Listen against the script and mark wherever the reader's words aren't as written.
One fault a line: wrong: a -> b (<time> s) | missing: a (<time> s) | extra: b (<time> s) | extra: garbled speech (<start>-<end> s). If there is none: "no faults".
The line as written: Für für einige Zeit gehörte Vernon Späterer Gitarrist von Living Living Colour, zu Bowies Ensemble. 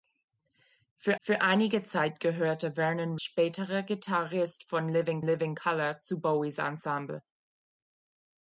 no faults